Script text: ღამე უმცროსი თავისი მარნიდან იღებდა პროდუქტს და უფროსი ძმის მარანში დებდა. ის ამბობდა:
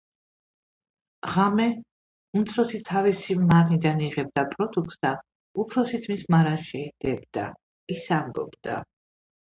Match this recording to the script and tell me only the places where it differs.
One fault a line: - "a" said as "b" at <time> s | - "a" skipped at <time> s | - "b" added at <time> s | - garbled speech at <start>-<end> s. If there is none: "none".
none